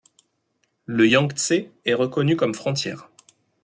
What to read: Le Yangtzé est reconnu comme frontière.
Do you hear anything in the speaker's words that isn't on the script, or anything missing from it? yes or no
no